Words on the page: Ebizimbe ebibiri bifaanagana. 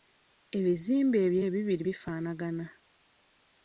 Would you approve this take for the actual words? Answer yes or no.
no